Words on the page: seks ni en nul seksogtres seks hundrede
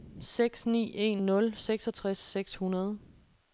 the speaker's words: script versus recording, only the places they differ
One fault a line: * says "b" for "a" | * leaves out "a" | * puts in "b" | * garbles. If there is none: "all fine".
all fine